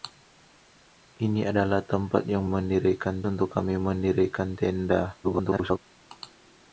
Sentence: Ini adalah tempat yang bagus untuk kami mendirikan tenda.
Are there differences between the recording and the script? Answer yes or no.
yes